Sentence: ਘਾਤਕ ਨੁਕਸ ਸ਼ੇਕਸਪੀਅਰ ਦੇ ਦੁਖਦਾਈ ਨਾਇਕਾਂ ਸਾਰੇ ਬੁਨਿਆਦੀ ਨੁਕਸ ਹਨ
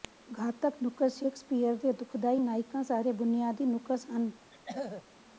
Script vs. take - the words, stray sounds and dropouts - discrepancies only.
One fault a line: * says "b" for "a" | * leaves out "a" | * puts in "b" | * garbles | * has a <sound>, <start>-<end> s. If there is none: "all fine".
* has a throat clearing, 4.5-5.1 s